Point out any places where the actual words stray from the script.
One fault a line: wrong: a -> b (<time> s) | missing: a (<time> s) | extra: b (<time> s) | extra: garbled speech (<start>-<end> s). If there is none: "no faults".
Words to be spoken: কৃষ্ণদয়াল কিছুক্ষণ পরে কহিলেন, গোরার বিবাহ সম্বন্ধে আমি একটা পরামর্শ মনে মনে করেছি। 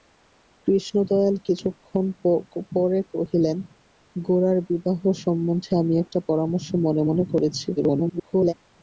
extra: garbled speech (7.8-8.5 s)